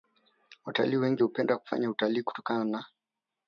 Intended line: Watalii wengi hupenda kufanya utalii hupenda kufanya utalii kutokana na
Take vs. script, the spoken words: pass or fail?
fail